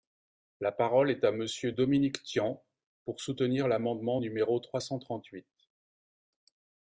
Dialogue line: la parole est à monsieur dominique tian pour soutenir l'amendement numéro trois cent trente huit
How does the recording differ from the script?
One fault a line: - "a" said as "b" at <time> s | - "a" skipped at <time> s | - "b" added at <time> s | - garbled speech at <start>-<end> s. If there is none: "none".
none